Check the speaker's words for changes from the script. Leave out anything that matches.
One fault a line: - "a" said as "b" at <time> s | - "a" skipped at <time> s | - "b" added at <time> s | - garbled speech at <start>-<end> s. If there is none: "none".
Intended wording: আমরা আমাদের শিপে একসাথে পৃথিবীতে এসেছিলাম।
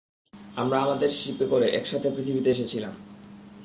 - "করে" added at 1.4 s